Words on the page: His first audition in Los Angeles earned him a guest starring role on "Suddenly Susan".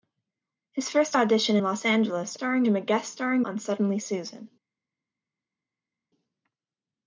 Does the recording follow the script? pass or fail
fail